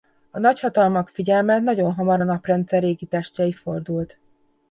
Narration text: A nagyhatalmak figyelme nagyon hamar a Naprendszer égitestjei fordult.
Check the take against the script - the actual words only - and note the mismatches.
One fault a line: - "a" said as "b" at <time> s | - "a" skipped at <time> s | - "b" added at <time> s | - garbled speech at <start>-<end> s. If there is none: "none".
none